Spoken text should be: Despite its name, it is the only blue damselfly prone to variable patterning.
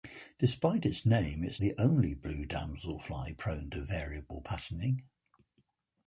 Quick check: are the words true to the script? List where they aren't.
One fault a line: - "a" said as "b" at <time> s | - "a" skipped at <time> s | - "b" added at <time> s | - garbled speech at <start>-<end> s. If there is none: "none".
none